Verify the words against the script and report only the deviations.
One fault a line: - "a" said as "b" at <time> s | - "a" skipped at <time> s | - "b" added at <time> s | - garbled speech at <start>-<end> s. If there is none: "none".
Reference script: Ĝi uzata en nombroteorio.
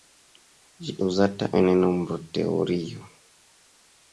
none